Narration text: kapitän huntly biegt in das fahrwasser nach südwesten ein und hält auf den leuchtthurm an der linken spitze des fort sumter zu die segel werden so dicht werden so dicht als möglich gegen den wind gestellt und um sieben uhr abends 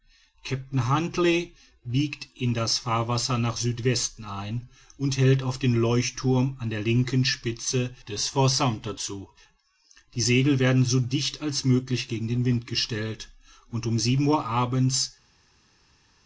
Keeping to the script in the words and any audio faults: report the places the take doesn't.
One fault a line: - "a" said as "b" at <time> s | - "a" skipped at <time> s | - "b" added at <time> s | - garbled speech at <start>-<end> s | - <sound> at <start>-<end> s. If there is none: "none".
- "werden so dicht" skipped at 11.4 s